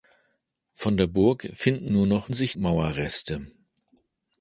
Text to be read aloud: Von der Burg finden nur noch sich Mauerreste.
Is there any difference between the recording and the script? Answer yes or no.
no